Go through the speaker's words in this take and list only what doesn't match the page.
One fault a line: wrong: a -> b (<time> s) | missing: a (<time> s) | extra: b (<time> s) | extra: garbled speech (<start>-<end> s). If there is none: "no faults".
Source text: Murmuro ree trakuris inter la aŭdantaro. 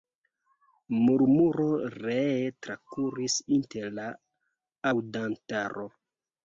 no faults